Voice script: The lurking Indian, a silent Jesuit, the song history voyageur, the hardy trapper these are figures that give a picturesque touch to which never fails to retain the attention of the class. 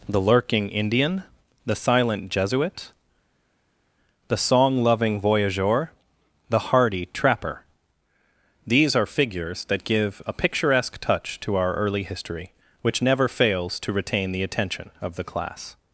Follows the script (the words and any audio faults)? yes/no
no